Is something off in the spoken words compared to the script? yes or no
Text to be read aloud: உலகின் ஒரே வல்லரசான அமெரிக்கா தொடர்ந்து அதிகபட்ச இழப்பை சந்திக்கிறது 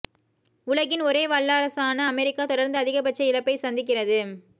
no